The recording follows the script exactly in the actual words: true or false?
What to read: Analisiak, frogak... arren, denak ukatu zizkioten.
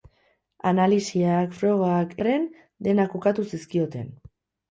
true